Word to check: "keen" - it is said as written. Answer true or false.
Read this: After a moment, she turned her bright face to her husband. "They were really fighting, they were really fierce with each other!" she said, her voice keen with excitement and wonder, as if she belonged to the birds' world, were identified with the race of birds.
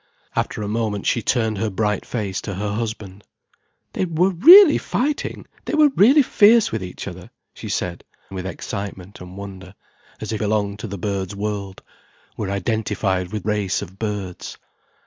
false